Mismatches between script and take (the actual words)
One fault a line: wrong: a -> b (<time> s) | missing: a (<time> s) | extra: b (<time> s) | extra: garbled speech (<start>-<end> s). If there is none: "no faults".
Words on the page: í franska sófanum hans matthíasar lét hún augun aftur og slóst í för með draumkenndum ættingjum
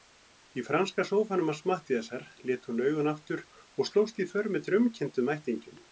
no faults